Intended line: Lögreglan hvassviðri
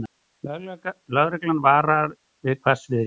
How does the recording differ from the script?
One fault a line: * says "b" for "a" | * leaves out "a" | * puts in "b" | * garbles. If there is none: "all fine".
* puts in "varar við"